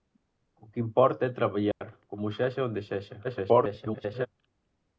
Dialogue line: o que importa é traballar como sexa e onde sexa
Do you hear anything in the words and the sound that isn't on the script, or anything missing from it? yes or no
yes